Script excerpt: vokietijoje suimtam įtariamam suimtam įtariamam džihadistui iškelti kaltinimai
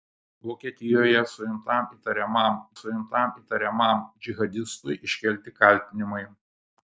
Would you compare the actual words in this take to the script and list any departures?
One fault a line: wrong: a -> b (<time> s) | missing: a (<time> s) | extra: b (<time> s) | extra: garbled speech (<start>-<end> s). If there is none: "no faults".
no faults